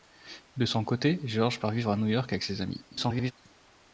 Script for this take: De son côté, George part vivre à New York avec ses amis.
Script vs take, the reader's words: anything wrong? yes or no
yes